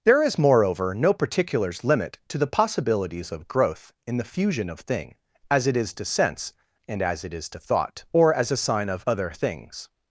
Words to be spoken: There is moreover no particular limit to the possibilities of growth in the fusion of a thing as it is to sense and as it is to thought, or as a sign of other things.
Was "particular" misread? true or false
true